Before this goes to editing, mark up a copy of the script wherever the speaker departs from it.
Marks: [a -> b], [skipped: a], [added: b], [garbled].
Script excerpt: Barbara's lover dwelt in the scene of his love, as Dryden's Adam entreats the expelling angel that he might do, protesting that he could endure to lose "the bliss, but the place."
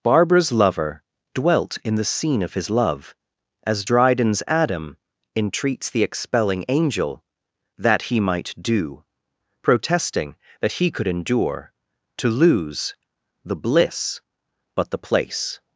Barbara's lover dwelt in the scene of his love, as Dryden's Adam entreats the expelling angel that he might do, protesting that he could endure to lose "the bliss, but the place."